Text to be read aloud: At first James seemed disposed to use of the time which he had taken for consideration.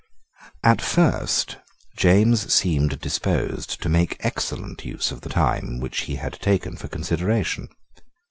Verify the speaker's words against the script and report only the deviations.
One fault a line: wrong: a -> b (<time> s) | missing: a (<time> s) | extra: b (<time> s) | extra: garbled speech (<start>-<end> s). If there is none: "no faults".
extra: make excellent (3.9 s)